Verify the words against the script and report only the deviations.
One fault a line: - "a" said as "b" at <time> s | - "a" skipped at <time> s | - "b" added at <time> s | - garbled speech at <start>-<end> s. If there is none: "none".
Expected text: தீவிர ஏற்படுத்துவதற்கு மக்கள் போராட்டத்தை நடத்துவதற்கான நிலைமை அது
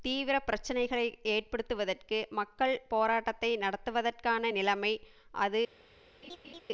- "பிரச்சினைகளை" added at 0.4 s